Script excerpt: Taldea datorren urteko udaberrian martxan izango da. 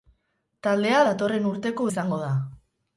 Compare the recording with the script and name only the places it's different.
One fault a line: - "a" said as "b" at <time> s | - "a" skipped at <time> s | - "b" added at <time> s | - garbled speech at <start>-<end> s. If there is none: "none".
- "udaberrian martxan" skipped at 1.9 s